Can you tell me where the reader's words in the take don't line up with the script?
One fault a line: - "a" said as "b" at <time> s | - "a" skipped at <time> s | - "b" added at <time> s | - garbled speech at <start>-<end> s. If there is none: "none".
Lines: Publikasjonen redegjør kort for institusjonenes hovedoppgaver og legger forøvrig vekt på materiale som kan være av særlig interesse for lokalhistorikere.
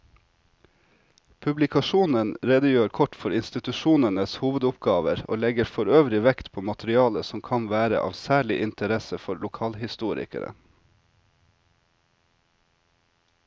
none